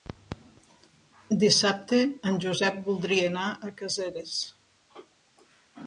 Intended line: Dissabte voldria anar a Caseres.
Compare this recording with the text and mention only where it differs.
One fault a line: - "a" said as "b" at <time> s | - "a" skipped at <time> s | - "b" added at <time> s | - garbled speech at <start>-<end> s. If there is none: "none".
- "en Josep" added at 2.3 s